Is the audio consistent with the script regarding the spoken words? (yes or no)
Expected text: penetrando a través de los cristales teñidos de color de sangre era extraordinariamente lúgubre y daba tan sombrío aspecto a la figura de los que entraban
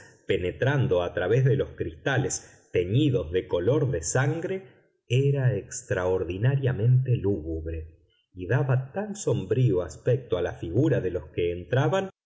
yes